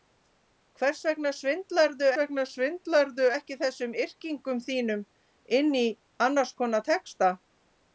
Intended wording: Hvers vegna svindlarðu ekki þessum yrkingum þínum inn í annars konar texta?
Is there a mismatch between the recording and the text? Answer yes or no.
yes